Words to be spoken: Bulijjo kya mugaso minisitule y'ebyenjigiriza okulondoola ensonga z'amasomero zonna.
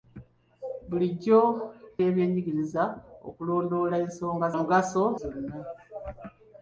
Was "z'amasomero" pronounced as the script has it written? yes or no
no